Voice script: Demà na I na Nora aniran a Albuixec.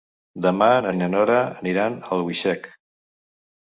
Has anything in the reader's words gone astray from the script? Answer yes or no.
no